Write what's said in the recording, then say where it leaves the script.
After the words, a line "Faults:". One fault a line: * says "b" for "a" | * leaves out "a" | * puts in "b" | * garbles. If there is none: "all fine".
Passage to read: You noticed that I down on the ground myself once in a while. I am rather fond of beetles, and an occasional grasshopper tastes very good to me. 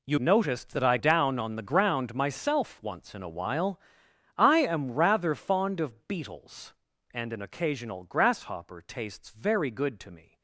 You noticed that I down on the ground myself once in a while. I am rather fond of beetles, and an occasional grasshopper tastes very good to me.
Faults:
all fine